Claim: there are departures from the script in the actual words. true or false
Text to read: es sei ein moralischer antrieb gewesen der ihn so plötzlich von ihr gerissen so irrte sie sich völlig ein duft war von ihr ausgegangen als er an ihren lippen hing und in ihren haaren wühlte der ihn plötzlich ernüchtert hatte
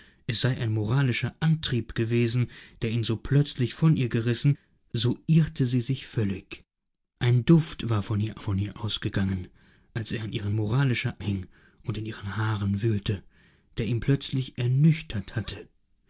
true